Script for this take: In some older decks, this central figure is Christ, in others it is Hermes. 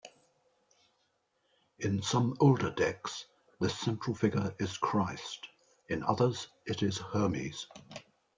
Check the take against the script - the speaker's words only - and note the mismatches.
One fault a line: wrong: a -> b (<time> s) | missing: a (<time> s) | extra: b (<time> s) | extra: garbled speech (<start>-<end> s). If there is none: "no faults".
no faults